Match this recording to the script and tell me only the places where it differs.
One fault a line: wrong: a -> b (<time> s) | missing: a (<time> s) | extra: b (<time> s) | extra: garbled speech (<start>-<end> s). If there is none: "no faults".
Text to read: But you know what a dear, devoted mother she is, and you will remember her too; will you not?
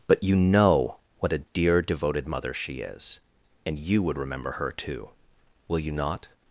wrong: will -> would (4.0 s)